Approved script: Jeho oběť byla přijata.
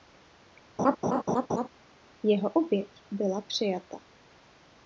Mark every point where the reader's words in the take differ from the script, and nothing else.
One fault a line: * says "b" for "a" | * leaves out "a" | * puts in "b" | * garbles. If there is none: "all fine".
all fine